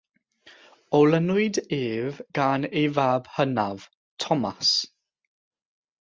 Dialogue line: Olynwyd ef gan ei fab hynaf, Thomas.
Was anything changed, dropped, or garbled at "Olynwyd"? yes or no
no